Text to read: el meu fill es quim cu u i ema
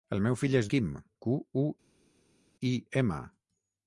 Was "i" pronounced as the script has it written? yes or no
yes